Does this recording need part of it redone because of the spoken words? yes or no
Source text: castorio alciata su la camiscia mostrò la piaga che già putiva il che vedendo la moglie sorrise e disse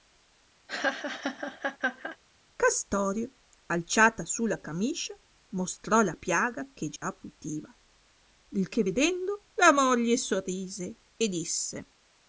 no